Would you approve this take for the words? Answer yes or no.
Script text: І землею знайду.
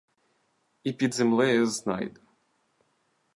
no